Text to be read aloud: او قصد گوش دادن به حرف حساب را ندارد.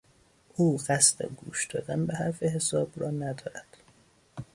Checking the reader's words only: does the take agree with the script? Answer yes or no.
yes